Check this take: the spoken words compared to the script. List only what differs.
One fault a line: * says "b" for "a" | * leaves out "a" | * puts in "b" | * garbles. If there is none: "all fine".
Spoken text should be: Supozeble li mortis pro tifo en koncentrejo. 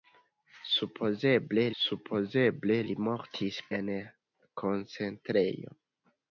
* puts in "supozeble"
* leaves out "pro tifo"